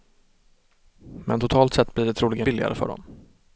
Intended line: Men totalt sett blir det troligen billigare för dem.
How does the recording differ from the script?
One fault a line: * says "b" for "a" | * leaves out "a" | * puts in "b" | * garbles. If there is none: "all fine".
all fine